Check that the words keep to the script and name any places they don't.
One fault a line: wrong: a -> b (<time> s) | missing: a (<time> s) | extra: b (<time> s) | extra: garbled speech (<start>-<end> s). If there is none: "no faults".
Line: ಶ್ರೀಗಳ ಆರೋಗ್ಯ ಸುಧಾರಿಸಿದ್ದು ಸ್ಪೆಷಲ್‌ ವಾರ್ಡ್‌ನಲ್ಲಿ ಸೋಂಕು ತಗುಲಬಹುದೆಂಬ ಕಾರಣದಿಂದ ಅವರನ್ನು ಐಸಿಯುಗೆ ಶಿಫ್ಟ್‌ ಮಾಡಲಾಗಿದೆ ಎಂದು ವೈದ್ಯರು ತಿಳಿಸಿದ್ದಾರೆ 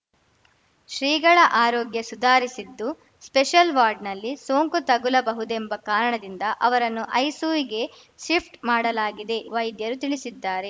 missing: ಎಂದು (9.4 s)